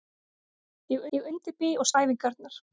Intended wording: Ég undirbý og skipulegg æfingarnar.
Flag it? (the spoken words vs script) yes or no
yes